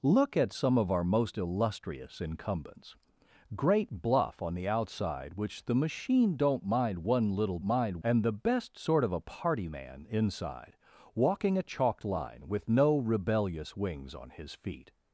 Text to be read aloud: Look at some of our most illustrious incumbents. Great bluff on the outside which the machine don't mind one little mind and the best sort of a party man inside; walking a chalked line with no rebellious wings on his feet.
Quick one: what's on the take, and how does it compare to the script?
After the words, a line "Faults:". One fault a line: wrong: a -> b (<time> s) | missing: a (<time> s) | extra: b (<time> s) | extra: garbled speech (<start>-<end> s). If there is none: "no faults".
Look at some of our most illustrious incumbents. Great bluff on the outside which the machine don't mind one little mind and the best sort of a party man inside; walking a chalked line with no rebellious wings on his feet.
Faults:
no faults